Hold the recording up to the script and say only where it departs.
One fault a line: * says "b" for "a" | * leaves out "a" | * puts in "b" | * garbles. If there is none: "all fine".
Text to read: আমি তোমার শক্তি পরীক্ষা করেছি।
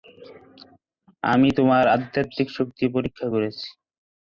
* puts in "আধ্যাত্মিক"